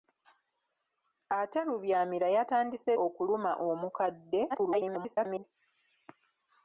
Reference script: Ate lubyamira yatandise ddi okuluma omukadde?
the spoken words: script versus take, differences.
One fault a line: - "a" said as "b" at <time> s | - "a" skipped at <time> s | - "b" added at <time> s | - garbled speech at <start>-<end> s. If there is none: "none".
- "ddi" skipped at 2.9 s
- garbled speech at 4.5-5.4 s